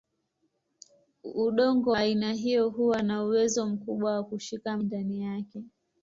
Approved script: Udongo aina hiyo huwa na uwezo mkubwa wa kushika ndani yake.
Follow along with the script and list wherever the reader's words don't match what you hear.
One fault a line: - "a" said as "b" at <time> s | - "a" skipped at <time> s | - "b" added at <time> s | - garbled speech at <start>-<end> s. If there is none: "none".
none